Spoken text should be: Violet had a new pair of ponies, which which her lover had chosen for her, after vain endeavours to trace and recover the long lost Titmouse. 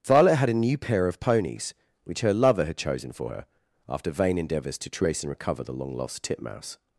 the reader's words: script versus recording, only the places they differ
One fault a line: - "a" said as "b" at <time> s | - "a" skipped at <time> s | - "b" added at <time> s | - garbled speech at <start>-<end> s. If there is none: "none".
- "which" skipped at 2.2 s